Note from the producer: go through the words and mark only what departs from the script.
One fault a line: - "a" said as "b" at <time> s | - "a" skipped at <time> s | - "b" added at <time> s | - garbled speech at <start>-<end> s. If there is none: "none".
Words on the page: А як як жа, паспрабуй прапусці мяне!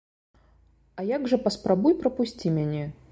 - "як" skipped at 1.3 s